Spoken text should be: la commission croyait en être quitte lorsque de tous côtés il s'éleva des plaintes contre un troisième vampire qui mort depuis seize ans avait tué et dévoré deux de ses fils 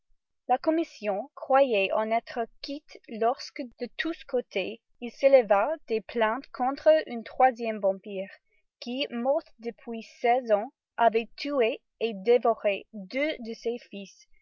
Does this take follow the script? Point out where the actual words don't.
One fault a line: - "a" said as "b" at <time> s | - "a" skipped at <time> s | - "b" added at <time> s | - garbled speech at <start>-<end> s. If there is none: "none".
none